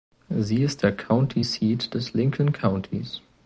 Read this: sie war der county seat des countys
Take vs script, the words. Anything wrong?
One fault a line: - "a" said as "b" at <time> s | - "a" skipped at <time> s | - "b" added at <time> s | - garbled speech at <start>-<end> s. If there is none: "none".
- "war" said as "ist" at 0.6 s
- "lincoln" added at 2.1 s